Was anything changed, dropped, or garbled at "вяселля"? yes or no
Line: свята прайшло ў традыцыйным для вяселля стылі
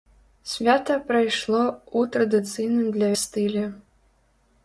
yes